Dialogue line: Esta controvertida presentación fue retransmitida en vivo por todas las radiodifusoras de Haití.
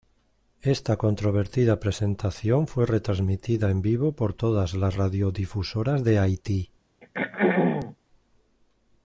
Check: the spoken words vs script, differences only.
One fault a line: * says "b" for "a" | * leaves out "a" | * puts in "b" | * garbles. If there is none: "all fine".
all fine